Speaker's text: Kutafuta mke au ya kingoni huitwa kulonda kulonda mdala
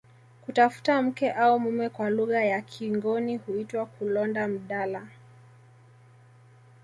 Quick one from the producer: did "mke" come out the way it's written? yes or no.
yes